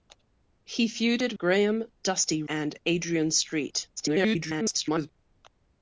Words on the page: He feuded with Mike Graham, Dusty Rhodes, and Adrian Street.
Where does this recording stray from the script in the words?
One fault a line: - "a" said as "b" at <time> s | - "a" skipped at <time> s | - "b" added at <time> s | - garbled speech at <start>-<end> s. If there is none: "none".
- "with Mike" skipped at 1.4 s
- "Rhodes" skipped at 2.4 s
- garbled speech at 4.0-5.1 s